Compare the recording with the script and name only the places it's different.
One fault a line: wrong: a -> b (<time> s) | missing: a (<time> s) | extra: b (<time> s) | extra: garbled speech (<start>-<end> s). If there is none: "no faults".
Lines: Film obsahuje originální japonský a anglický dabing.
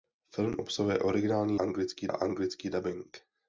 wrong: japonský -> anglický (1.5 s)